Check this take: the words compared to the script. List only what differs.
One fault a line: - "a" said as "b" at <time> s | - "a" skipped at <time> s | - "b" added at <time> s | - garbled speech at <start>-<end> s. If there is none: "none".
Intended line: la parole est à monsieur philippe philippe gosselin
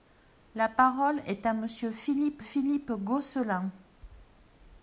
none